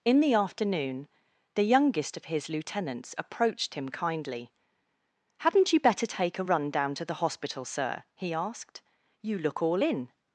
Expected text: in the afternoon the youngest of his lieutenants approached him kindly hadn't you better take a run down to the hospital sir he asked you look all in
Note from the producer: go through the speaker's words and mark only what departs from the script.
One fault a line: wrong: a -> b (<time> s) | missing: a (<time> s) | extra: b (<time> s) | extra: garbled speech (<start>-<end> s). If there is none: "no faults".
no faults